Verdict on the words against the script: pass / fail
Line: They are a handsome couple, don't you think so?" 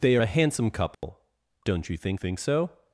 fail